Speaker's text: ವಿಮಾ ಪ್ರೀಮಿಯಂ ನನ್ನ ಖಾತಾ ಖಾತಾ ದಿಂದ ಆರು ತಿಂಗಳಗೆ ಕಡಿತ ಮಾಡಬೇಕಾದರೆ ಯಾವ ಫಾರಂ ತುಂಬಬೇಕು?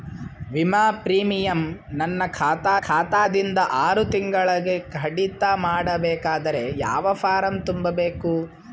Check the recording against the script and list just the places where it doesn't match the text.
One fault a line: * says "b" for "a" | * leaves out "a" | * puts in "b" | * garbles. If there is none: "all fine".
all fine